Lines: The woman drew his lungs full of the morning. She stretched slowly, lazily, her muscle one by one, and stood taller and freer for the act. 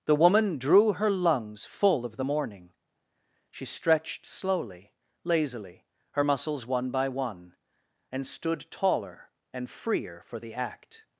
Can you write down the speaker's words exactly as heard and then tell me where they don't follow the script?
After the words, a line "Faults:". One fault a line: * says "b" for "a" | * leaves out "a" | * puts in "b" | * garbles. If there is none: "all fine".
The woman drew her lungs full of the morning. She stretched slowly, lazily, her muscles one by one, and stood taller and freer for the act.
Faults:
* says "her" for "his"
* says "muscles" for "muscle"